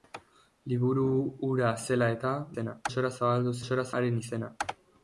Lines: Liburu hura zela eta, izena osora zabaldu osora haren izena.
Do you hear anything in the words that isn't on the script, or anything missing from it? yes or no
no